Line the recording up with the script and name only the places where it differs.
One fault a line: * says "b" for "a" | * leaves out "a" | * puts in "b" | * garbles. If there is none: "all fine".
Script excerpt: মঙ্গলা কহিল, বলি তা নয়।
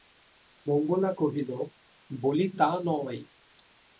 all fine